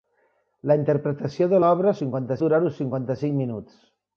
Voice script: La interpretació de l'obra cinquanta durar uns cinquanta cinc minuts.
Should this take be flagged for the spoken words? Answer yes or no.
no